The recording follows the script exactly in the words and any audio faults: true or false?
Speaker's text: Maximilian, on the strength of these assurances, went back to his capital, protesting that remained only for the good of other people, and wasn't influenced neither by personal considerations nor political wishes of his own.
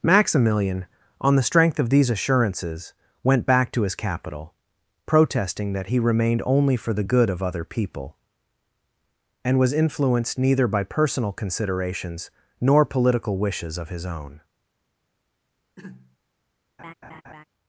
false